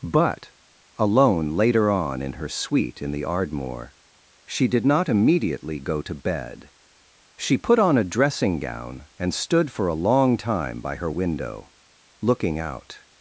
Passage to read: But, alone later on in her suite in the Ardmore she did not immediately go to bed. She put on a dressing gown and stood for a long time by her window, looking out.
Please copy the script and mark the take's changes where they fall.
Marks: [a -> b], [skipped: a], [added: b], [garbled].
But, alone later on in her suite in the Ardmore she did not immediately go to bed. She put on a dressing gown and stood for a long time by her window, looking out.